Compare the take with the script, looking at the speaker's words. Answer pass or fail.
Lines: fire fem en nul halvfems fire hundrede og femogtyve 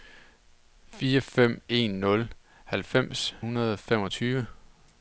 fail